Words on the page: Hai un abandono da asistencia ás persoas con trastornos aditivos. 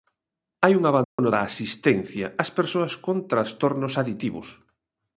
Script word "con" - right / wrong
right